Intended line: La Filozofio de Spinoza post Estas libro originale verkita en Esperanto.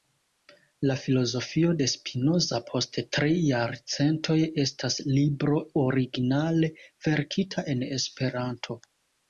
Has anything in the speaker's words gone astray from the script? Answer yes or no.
yes